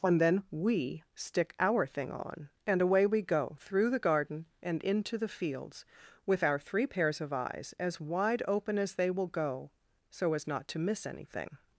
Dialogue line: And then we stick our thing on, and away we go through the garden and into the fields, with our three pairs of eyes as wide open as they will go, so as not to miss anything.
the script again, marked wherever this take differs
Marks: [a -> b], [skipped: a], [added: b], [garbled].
And then we stick our thing on, and away we go through the garden and into the fields, with our three pairs of eyes as wide open as they will go, so as not to miss anything.